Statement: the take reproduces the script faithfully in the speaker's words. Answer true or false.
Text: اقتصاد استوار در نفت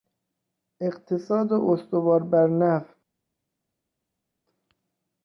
false